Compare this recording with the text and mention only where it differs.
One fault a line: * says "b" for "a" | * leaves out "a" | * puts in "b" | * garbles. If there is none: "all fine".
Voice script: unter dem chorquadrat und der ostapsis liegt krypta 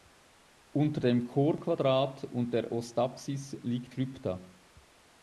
all fine